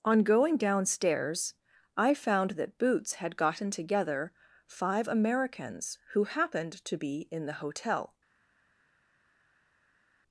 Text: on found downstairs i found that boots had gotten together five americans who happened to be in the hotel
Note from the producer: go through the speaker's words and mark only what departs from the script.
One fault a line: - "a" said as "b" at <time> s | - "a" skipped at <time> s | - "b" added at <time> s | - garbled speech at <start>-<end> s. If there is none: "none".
- "found" said as "going" at 0.2 s